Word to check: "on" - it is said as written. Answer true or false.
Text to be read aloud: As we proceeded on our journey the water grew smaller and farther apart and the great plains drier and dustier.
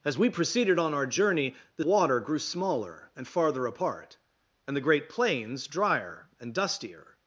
true